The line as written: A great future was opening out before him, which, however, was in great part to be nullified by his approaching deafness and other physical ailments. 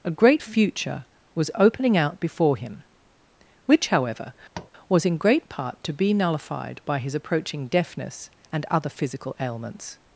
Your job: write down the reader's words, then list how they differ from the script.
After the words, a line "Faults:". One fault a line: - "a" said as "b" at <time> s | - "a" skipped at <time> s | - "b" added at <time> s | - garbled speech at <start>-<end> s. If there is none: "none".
A great future was opening out before him, which, however, was in great part to be nullified by his approaching deafness and other physical ailments.
Faults:
none